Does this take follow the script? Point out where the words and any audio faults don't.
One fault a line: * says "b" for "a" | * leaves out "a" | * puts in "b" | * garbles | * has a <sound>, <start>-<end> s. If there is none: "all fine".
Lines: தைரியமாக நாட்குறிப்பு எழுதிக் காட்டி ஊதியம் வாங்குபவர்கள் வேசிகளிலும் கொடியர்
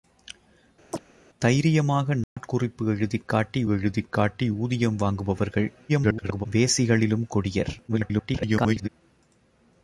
* has a chirp, 0.9-1.0 s
* has a dropout, 2.2-2.4 s
* puts in "எழுதிக் காட்டி"
* garbles
* garbles